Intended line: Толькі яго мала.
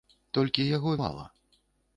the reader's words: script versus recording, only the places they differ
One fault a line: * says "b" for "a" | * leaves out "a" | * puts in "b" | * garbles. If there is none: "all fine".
all fine